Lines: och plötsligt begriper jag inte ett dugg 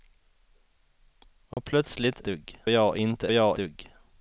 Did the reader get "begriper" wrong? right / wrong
wrong